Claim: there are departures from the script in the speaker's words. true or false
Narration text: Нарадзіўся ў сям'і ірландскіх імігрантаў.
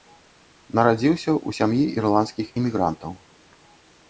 false